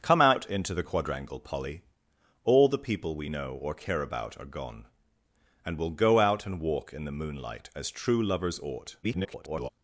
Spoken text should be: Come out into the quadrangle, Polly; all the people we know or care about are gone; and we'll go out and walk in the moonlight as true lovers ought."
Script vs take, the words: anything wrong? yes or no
yes